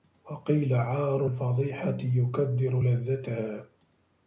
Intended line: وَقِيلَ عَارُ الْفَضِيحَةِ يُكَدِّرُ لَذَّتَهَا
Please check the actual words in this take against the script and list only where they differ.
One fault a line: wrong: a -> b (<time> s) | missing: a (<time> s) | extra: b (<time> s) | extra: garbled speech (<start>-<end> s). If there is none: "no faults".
no faults